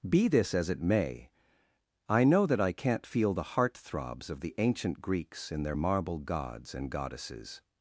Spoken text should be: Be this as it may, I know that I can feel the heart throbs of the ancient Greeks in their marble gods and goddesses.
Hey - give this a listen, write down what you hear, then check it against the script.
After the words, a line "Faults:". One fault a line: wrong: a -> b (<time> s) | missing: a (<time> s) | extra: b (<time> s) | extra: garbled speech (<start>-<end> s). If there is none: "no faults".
Be this as it may, I know that I can't feel the heart throbs of the ancient Greeks in their marble gods and goddesses.
Faults:
wrong: can -> can't (2.7 s)